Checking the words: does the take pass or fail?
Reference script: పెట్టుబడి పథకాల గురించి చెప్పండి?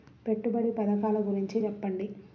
pass